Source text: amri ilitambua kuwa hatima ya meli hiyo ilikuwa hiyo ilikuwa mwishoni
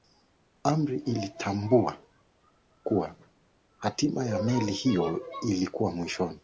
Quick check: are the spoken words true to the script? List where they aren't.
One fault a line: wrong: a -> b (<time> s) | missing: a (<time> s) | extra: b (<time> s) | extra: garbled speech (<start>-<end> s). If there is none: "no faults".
missing: hiyo ilikuwa (5.9 s)